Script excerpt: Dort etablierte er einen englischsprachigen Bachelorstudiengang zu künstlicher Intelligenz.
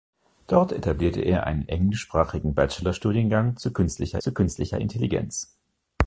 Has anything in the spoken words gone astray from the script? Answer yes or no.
yes